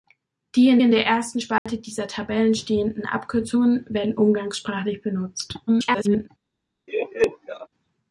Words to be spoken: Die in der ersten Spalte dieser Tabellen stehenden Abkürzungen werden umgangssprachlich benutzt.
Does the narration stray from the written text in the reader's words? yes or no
yes